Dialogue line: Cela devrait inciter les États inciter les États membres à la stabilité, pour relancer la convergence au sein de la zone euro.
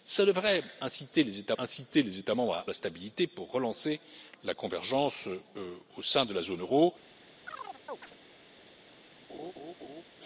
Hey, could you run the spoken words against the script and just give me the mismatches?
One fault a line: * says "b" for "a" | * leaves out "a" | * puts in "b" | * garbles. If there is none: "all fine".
all fine